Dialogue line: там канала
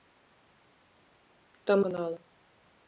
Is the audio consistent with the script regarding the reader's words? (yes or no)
yes